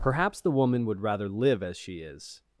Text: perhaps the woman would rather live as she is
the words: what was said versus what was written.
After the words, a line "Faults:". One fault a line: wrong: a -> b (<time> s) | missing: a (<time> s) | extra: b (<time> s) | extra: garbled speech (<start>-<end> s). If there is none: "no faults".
perhaps the woman would rather live as she is
Faults:
no faults